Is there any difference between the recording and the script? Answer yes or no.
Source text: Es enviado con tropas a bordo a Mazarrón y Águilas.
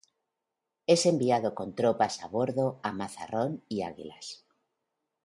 no